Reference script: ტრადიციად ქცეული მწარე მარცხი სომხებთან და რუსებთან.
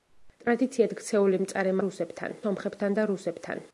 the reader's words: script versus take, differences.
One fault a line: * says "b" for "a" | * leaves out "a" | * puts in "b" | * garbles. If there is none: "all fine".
* says "რუსებთან" for "მარცხი"